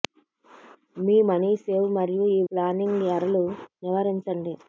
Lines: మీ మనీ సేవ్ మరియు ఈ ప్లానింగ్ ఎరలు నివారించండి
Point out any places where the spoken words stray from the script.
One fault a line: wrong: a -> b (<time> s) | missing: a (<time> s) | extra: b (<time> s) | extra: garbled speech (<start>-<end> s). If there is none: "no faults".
no faults